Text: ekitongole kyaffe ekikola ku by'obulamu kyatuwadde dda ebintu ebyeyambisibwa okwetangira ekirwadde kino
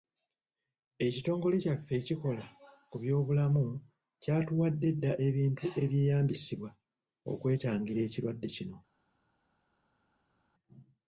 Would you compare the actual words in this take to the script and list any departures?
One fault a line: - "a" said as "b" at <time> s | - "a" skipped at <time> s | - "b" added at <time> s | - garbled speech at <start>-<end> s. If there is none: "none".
none